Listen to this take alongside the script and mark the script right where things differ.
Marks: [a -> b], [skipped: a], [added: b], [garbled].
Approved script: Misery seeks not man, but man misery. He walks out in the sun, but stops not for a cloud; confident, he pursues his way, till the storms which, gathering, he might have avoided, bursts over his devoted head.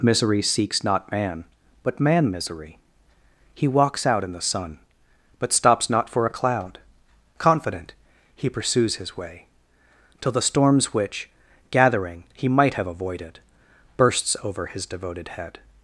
Misery seeks not man, but man misery. He walks out in the sun, but stops not for a cloud; confident, he pursues his way, till the storms which, gathering, he might have avoided, bursts over his devoted head.